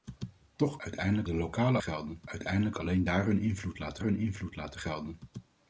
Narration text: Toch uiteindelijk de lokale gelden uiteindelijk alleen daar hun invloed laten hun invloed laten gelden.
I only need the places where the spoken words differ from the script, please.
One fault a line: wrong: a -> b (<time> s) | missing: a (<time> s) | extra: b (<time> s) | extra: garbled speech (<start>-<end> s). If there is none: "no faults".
no faults